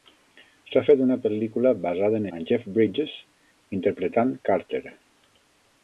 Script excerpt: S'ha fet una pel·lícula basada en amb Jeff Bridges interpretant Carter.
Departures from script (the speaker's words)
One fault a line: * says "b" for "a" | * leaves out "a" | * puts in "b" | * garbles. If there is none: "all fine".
all fine